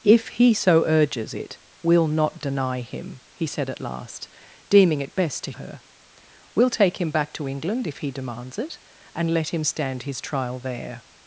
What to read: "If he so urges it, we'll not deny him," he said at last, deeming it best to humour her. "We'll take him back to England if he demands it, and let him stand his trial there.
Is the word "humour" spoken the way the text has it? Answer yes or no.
no